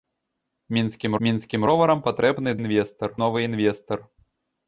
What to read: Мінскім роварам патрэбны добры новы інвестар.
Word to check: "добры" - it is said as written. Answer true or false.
false